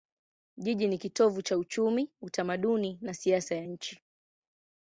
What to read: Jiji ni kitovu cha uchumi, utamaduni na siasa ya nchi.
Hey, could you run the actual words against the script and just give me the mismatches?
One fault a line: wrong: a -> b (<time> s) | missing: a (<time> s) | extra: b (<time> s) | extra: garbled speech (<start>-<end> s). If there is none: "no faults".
no faults